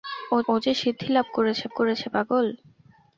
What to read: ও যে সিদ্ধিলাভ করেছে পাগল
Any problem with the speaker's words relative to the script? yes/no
yes